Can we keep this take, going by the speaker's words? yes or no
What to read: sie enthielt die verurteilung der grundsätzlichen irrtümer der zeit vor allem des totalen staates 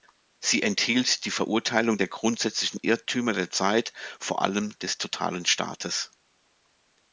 yes